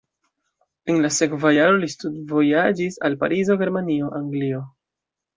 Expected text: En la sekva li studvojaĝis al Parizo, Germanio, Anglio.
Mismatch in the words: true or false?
true